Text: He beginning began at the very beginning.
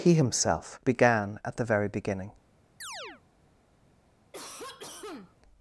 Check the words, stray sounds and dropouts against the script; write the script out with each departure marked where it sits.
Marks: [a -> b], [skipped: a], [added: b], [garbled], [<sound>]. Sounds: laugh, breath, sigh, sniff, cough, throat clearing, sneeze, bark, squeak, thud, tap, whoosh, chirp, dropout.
He [beginning -> himself] began at the very beginning. [chirp] [cough]